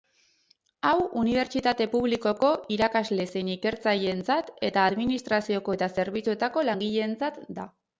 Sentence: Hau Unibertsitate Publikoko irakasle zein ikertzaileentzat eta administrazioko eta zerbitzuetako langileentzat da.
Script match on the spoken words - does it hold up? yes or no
yes